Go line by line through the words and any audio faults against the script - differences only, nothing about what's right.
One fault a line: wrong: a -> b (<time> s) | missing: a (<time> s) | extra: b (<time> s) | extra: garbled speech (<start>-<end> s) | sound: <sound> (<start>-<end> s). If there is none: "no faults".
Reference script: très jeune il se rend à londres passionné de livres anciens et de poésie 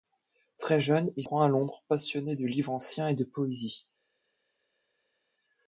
missing: se (1.2 s)